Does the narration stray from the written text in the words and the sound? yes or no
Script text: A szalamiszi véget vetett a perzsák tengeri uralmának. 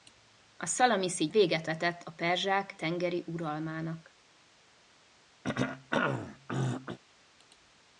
yes